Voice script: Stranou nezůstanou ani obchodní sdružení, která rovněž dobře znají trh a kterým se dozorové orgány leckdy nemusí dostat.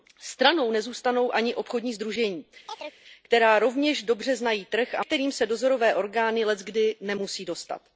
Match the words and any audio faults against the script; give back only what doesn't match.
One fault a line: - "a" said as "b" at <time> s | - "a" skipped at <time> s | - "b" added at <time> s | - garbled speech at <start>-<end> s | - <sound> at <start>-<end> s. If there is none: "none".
- chirp at 2.7-3.0 s